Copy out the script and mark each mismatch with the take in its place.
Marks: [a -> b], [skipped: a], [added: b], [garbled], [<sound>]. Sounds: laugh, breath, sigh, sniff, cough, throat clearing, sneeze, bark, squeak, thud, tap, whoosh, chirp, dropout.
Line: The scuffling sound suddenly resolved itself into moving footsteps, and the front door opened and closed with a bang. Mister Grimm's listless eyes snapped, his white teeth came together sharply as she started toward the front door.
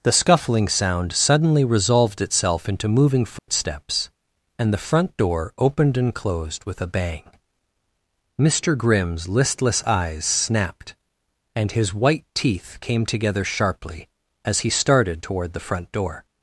The scuffling sound suddenly resolved itself into moving footsteps, [dropout] and the front door opened and closed with a bang. Mister Grimm's listless eyes snapped, [added: and] his white teeth came together sharply as [she -> he] started toward the front door.